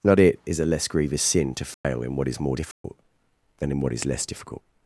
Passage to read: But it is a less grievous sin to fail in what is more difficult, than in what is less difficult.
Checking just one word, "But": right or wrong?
wrong